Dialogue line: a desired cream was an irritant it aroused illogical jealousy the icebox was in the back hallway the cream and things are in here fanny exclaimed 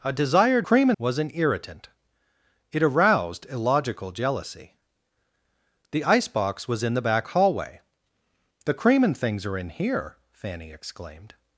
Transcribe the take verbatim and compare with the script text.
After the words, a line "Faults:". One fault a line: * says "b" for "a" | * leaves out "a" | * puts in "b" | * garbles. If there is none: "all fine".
a desired cream was an irritant it aroused illogical jealousy the icebox was in the back hallway the cream and things are in here fanny exclaimed
Faults:
all fine